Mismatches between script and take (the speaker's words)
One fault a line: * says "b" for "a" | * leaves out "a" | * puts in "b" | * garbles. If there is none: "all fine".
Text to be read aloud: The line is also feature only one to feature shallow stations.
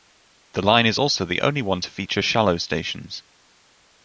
* says "the" for "feature"